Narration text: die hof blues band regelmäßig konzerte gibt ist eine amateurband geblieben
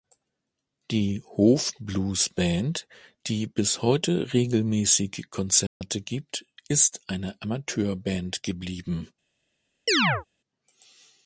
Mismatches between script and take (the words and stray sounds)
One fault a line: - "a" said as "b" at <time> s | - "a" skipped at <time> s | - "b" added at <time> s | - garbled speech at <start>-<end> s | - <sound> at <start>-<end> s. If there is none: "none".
- "die bis heute" added at 3.3 s
- dropout at 5.7-5.8 s
- chirp at 9.9-10.2 s